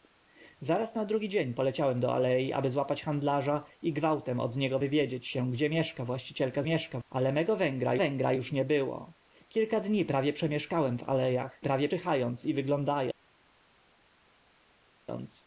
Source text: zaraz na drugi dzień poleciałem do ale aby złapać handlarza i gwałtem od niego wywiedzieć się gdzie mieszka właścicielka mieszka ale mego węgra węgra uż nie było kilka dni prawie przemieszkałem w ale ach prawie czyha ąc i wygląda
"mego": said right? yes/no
yes